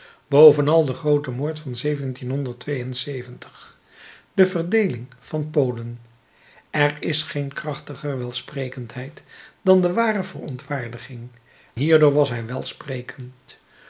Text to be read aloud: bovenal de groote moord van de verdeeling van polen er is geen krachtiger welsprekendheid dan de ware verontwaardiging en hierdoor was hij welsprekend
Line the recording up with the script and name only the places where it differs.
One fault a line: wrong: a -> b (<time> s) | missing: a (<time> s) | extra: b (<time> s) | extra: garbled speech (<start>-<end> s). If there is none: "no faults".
missing: en (11.3 s)